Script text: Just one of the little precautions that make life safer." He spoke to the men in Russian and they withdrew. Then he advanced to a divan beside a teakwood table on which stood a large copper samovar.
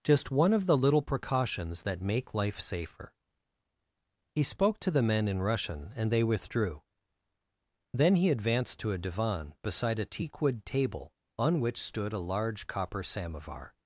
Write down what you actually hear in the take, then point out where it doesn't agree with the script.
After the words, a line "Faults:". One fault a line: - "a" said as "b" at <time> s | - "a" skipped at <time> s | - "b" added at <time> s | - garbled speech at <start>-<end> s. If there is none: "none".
Just one of the little precautions that make life safer." He spoke to the men in Russian and they withdrew. Then he advanced to a divan beside a teakwood table on which stood a large copper samovar.
Faults:
none